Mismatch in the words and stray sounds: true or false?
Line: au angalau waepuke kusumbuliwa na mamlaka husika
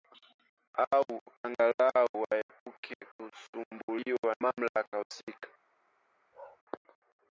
true